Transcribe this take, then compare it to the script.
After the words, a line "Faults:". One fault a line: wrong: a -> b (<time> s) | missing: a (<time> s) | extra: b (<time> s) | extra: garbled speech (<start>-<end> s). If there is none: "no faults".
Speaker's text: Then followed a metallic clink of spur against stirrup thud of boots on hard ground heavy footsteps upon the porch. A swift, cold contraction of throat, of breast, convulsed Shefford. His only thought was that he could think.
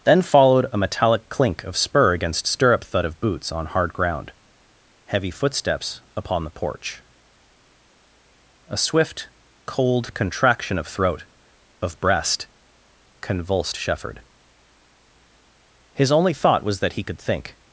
Then followed a metallic clink of spur against stirrup thud of boots on hard ground heavy footsteps upon the porch. A swift, cold contraction of throat, of breast, convulsed Shefford. His only thought was that he could think.
Faults:
no faults